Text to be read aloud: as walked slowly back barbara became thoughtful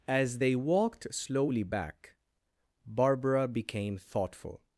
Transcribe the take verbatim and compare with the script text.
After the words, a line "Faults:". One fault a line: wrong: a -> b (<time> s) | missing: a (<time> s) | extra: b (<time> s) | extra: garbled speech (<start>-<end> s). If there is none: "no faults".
as they walked slowly back barbara became thoughtful
Faults:
extra: they (0.4 s)